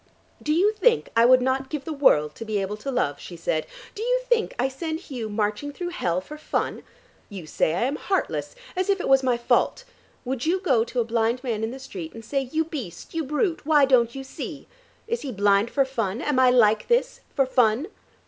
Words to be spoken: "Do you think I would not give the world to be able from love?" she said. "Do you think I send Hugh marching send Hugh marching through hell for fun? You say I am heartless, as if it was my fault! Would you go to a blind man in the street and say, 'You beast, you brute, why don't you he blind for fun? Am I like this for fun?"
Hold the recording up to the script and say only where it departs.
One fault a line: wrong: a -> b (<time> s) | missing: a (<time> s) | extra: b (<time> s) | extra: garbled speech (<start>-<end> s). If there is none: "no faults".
wrong: from -> to (2.8 s)
missing: send Hugh marching (5.7 s)
extra: see Is (14.2 s)